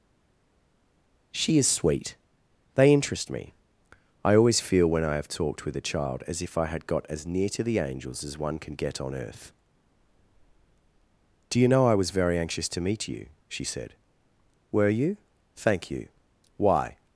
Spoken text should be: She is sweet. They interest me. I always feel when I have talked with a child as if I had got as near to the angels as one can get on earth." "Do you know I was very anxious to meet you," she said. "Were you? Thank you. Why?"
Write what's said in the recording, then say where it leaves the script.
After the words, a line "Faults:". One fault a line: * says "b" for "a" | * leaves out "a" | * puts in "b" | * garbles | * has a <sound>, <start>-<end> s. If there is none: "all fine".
She is sweet. They interest me. I always feel when I have talked with a child as if I had got as near to the angels as one can get on earth." "Do you know I was very anxious to meet you," she said. "Were you? Thank you. Why?"
Faults:
all fine